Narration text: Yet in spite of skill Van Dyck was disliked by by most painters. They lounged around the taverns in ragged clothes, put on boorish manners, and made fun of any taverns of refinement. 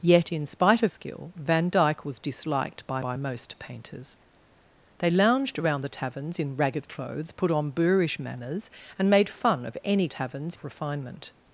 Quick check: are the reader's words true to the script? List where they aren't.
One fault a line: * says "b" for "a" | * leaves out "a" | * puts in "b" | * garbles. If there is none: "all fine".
all fine